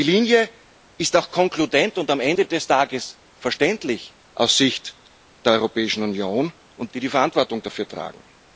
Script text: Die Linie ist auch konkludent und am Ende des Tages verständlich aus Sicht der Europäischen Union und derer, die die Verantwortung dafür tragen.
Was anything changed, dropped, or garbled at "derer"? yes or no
yes